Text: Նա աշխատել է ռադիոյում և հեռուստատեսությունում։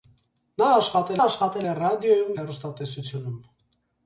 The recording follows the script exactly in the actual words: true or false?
false